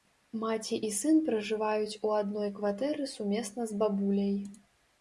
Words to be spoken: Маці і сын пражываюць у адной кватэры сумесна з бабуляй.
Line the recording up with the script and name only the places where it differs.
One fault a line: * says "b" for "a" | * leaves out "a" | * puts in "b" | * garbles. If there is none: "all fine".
all fine